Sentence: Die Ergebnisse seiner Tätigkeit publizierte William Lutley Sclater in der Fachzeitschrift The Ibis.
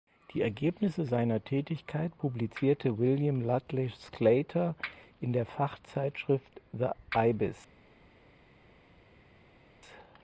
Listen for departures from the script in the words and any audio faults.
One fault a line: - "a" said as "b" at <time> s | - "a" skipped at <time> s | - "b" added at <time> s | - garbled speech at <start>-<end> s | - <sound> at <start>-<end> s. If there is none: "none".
none